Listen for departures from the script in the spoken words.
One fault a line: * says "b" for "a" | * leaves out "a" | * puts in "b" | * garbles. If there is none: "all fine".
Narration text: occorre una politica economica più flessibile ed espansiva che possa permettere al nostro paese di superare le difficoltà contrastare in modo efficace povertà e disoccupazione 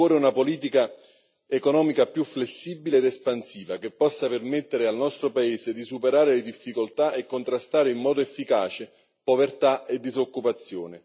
* puts in "e"